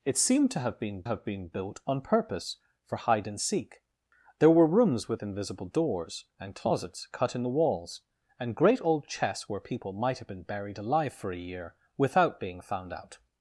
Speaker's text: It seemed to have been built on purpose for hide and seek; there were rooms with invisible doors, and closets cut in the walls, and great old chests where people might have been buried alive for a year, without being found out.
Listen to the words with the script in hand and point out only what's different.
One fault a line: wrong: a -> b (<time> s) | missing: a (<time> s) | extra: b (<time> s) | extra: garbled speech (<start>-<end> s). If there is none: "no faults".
extra: have been (1.0 s)